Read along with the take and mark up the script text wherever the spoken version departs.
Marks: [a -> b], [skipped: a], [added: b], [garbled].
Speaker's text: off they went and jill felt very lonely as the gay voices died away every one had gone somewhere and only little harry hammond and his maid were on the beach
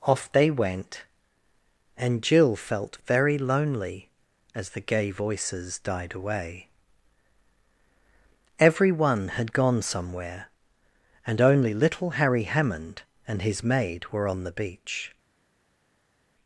off they went and jill felt very lonely as the gay voices died away every one had gone somewhere and only little harry hammond and his maid were on the beach